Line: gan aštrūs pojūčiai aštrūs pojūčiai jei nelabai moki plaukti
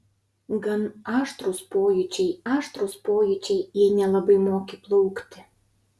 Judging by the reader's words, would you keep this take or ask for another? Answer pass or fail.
pass